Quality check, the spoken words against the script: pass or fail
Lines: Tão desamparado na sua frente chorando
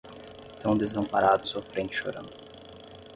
fail